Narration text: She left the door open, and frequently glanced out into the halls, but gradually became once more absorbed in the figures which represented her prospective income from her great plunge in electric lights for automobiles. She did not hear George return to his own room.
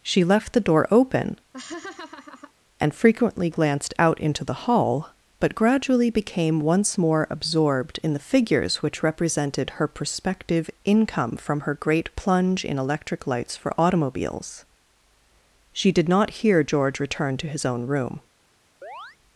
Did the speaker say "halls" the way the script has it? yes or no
no